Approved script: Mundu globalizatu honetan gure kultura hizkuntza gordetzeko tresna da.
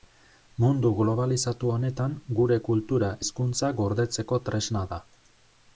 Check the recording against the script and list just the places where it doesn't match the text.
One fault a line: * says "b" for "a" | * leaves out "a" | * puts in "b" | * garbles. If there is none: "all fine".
all fine